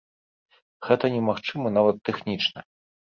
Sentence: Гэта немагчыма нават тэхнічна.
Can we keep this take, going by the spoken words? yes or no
yes